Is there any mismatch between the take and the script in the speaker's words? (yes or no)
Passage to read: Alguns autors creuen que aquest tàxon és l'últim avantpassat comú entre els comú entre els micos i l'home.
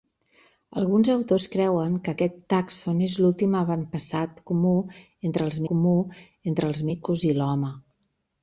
no